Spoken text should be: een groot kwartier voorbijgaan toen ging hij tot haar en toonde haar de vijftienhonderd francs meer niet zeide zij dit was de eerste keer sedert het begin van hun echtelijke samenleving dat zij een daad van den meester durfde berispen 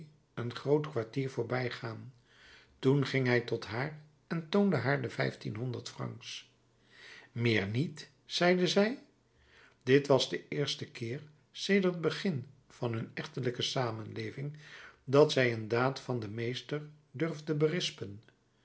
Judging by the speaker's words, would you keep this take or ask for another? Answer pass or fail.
pass